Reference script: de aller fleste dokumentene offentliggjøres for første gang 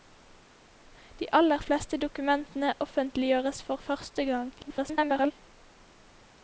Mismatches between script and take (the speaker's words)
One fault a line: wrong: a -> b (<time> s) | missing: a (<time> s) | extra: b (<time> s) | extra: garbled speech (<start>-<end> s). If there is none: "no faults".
extra: garbled speech (4.6-5.3 s)